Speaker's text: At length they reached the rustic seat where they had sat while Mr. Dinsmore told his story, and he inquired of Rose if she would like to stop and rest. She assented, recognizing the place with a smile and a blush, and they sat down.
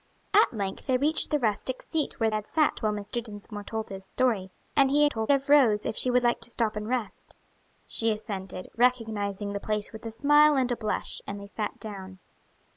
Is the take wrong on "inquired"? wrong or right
wrong